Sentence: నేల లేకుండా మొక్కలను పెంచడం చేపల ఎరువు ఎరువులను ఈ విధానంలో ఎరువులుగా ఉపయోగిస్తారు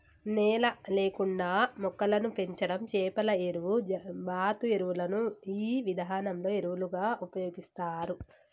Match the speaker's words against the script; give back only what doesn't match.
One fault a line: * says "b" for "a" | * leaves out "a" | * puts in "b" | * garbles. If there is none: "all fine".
* puts in "బాతు"